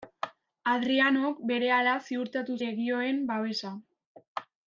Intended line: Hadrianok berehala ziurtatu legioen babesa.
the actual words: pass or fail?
pass